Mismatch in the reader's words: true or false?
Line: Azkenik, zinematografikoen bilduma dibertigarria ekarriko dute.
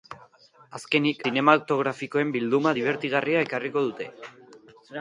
false